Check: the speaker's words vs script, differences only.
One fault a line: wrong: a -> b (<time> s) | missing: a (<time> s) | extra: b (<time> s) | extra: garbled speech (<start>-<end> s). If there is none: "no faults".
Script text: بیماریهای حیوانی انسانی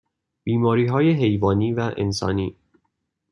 extra: و (1.7 s)